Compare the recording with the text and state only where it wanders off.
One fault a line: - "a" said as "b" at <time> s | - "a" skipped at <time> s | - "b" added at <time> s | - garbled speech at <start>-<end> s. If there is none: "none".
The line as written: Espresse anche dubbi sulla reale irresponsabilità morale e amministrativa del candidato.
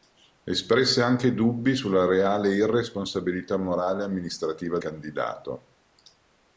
- "del" skipped at 4.8 s